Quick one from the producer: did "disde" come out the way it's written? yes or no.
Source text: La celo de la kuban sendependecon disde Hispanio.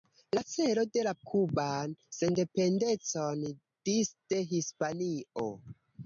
yes